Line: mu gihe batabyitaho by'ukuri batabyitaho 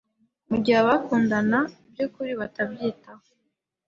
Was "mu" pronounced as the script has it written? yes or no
yes